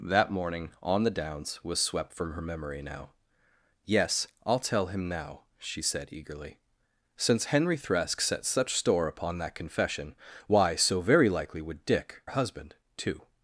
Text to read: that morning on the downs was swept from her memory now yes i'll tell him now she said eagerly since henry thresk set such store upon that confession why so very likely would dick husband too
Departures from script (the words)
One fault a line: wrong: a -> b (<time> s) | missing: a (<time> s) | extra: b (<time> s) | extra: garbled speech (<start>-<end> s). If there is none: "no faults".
no faults